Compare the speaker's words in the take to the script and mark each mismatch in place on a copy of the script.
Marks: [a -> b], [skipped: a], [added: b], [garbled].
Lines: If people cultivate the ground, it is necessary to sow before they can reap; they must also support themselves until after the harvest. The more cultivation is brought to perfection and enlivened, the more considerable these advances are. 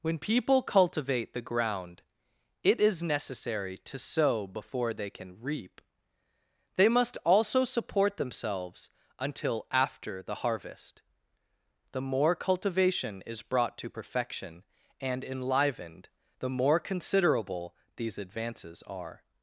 [If -> When] people cultivate the ground, it is necessary to sow before they can reap; they must also support themselves until after the harvest. The more cultivation is brought to perfection and enlivened, the more considerable these advances are.